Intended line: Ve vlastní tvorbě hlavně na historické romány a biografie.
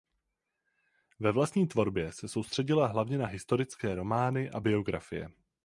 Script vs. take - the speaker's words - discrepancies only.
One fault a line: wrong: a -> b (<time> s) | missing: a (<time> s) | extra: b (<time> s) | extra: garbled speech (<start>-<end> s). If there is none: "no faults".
extra: se soustředila (2.1 s)